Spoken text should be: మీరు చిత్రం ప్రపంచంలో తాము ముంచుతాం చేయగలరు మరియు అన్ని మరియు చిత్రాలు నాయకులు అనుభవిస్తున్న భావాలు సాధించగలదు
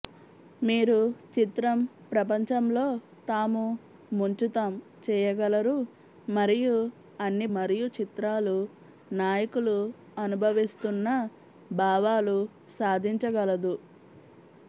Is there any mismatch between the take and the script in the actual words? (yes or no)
no